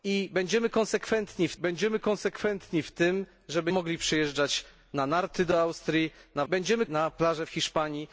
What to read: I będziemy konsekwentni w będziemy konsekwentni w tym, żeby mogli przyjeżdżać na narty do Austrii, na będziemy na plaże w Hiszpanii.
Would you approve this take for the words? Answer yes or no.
yes